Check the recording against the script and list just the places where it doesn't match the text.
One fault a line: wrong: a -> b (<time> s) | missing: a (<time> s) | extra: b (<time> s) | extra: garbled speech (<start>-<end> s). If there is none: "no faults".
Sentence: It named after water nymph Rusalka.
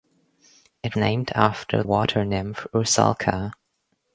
no faults